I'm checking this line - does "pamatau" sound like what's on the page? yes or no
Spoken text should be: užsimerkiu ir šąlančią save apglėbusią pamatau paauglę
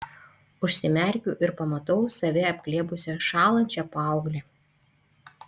no